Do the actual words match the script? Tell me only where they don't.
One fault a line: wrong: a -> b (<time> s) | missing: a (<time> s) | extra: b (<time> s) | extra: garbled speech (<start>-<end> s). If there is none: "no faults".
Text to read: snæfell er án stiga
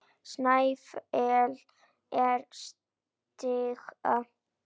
missing: án (2.4 s)